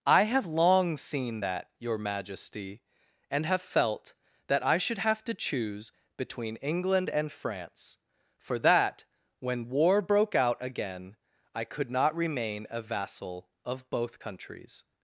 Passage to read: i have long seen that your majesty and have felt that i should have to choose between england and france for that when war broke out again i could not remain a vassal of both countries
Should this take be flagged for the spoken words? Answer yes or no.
no